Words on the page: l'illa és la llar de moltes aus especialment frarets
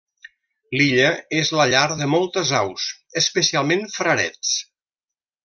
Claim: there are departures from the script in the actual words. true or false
false